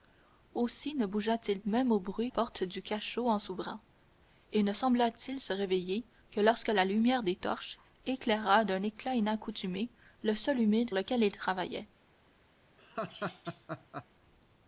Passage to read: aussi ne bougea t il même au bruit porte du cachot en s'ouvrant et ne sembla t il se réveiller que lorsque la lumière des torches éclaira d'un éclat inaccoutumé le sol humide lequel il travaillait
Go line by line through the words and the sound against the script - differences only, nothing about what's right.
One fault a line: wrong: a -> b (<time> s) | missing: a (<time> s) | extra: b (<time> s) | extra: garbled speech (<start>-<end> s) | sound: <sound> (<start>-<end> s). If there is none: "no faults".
sound: laugh (12.8-14.1 s)